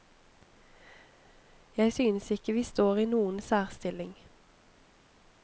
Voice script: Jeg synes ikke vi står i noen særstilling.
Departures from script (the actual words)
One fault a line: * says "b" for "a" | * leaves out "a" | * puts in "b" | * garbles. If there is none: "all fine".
all fine